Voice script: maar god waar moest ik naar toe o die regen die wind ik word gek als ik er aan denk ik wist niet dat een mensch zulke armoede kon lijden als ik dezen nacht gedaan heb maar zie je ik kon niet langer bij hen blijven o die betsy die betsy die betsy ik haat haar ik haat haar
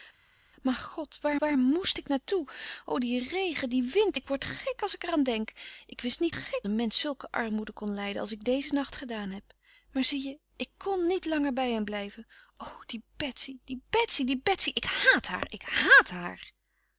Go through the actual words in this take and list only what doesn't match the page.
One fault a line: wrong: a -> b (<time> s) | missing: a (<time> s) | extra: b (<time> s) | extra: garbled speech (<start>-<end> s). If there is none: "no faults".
extra: waar (1.4 s)
wrong: dat -> gek (6.3 s)